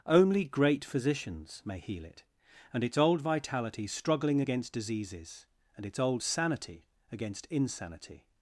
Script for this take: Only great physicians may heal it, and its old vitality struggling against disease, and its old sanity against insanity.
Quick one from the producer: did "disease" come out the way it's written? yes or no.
no